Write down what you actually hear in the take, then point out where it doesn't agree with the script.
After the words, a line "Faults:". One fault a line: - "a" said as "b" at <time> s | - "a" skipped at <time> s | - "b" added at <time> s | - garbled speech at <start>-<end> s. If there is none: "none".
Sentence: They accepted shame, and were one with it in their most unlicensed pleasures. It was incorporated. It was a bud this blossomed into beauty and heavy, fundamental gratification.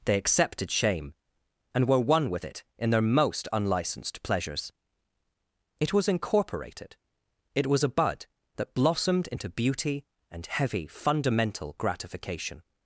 They accepted shame, and were one with it in their most unlicensed pleasures. It was incorporated. It was a bud that blossomed into beauty and heavy, fundamental gratification.
Faults:
- "this" said as "that" at 8.6 s